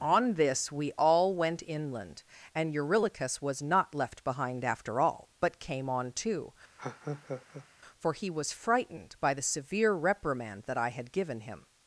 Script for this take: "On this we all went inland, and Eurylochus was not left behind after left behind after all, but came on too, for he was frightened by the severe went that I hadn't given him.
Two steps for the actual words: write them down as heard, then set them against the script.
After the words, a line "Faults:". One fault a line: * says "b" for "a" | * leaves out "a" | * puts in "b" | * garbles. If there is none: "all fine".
"On this we all went inland, and Eurylochus was not left behind after all, but came on too, for he was frightened by the severe reprimand that I had given him.
Faults:
* leaves out "left behind after"
* says "reprimand" for "went"
* says "had" for "hadn't"